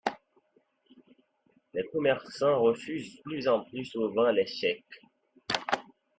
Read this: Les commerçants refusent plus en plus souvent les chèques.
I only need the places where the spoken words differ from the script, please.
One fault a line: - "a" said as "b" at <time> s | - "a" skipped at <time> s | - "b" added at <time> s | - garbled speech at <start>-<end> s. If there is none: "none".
none